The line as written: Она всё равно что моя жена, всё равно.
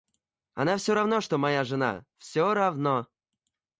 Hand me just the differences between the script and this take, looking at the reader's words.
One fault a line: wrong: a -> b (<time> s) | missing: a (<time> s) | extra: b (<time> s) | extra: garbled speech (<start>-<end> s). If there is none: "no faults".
no faults